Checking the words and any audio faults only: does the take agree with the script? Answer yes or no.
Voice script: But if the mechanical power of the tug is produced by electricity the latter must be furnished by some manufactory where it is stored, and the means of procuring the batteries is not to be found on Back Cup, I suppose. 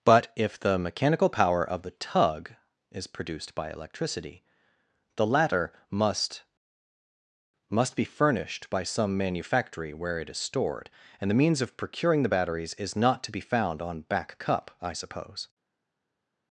no